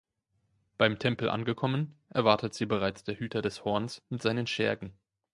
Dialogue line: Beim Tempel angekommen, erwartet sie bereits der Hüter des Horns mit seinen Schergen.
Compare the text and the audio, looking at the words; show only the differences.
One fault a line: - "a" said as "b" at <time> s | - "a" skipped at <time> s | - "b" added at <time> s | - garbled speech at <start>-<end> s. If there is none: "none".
none